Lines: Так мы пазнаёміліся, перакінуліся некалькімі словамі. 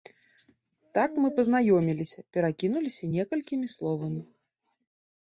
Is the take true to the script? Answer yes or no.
yes